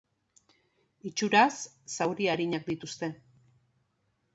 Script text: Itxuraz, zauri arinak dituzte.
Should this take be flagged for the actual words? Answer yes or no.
no